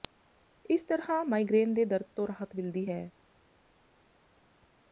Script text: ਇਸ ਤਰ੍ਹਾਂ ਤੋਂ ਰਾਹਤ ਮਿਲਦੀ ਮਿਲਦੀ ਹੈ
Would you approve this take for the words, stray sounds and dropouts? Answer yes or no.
no